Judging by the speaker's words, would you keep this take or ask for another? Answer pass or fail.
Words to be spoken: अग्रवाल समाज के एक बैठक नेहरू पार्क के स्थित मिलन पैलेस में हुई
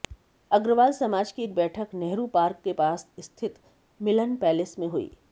fail